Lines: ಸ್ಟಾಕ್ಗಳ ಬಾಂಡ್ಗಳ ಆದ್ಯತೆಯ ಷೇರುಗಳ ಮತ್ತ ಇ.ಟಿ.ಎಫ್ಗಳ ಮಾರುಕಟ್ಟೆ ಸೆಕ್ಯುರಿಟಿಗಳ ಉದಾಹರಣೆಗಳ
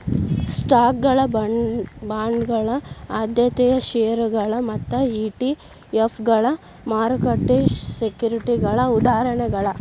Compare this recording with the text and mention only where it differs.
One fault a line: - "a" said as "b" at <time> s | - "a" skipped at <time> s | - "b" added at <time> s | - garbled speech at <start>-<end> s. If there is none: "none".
none